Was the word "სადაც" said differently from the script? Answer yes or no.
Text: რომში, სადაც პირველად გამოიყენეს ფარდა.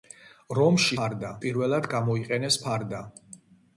yes